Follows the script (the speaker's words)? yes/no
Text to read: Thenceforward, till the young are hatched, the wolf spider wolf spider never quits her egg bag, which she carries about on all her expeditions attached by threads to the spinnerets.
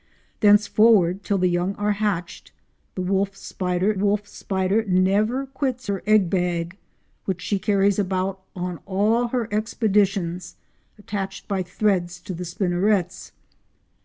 yes